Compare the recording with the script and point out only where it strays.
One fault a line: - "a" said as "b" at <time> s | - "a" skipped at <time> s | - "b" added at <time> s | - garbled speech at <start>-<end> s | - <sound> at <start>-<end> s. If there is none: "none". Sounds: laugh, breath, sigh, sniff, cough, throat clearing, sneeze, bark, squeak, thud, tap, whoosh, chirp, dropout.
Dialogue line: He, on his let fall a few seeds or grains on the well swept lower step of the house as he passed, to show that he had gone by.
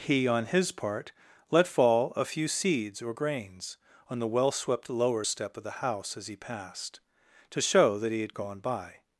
- "part" added at 0.7 s